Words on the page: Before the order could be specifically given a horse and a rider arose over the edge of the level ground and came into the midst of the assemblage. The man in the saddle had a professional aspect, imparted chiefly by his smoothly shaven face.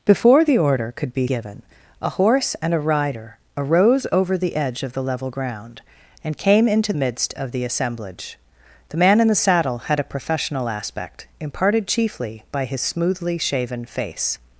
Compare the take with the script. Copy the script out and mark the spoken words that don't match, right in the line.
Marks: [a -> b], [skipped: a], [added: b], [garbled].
Before the order could be [skipped: specifically] given a horse and a rider arose over the edge of the level ground and came into [skipped: the] midst of the assemblage. The man in the saddle had a professional aspect, imparted chiefly by his smoothly shaven face.